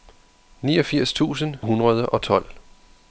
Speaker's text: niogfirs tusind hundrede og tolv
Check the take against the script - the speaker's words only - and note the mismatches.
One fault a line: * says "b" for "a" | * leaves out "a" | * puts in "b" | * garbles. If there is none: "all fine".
all fine